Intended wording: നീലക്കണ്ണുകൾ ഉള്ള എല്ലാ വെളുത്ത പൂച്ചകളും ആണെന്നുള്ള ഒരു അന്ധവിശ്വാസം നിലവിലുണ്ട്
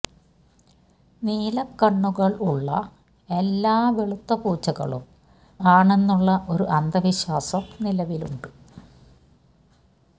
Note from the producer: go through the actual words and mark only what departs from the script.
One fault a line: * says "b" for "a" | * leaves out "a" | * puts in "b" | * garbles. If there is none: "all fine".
all fine